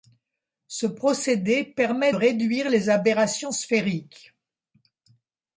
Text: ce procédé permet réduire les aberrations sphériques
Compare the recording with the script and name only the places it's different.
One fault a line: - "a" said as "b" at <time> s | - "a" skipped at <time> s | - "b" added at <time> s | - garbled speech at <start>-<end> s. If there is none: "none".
none